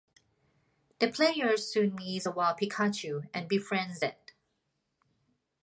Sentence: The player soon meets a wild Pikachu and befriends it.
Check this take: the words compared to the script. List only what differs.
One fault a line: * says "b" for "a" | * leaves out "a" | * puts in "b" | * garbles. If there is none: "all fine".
all fine